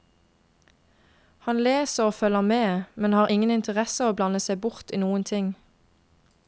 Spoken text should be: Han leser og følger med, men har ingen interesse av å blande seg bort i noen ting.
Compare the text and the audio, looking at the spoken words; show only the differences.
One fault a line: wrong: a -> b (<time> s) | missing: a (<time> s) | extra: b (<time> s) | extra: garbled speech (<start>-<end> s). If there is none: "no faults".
no faults